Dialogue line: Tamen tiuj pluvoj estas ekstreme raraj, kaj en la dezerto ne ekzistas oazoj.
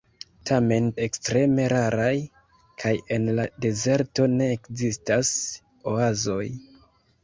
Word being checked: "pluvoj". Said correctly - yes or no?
no